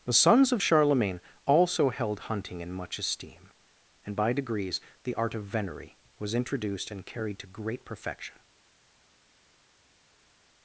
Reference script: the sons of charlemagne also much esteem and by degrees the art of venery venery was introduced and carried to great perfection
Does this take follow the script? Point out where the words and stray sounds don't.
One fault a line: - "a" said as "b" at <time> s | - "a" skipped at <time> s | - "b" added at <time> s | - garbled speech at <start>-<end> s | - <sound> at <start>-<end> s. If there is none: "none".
- "held hunting in" added at 1.9 s
- "venery" skipped at 6.0 s